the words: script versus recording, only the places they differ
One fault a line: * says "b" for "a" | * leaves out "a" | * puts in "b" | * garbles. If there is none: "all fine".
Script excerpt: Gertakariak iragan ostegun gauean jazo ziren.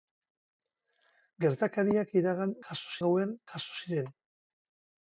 * says "jazo" for "ostegun"